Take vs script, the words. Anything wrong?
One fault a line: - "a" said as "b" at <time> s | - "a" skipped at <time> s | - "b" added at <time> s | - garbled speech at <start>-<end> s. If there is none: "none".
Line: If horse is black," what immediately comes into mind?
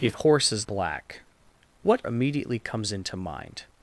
none